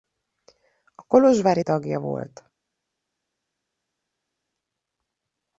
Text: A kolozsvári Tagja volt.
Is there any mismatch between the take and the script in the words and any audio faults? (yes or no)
no